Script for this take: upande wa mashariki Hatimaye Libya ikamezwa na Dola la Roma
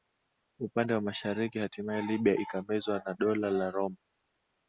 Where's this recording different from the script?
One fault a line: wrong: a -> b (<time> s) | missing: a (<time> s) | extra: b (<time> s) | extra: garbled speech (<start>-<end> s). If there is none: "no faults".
no faults